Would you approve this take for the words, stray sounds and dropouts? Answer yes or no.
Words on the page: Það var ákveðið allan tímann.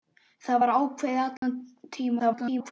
no